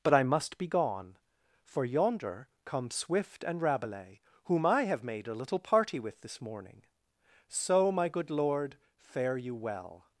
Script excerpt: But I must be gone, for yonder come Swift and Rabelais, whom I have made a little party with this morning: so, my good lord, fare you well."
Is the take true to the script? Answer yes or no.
yes